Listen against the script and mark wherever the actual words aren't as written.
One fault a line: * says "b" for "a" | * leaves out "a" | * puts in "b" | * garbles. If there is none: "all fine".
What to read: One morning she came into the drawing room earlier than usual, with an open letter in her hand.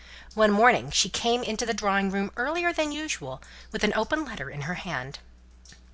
all fine